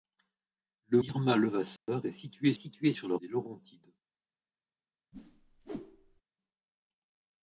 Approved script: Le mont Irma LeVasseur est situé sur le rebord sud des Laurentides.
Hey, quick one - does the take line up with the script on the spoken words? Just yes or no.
no